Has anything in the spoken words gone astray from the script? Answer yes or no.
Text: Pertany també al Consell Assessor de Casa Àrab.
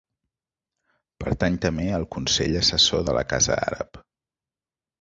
yes